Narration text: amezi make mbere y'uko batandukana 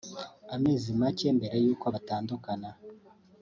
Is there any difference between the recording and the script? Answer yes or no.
no